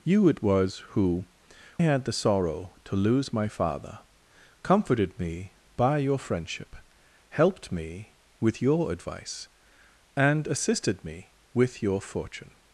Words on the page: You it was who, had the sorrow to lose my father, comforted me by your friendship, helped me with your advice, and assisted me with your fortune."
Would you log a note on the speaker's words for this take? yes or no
no